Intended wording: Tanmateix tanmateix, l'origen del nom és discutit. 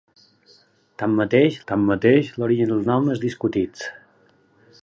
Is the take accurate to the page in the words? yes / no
yes